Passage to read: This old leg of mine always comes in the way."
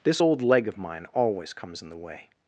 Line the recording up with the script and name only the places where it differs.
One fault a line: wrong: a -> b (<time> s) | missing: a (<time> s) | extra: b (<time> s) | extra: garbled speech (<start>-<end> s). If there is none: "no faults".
no faults